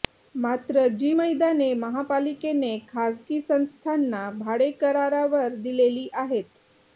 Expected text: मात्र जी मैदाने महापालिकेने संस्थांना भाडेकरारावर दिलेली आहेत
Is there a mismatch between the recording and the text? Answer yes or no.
yes